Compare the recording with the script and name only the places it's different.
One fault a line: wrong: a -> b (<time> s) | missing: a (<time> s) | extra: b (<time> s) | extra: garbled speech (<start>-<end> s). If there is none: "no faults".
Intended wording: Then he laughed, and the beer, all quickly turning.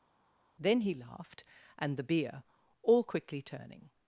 no faults